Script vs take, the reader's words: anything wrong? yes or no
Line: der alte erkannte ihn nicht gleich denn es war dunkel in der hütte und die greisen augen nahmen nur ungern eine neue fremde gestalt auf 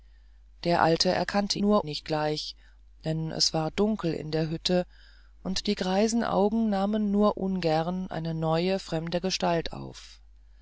yes